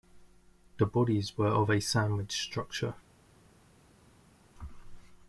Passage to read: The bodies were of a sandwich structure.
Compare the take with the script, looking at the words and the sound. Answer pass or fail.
pass